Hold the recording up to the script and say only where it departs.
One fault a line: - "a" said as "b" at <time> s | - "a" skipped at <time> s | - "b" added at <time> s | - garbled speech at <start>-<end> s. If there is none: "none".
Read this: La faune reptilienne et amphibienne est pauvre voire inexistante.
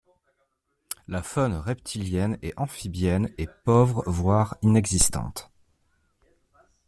none